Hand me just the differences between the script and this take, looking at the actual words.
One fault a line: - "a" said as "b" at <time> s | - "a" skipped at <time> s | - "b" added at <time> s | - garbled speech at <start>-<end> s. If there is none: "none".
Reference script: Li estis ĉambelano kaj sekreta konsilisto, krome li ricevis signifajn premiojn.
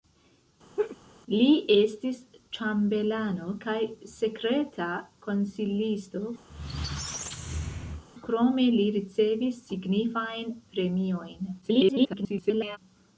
- garbled speech at 11.6-12.8 s